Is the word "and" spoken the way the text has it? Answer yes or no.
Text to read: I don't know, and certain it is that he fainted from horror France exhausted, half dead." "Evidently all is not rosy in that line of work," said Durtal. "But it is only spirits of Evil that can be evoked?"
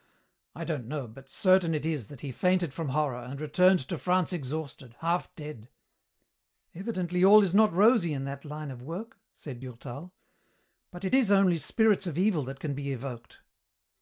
no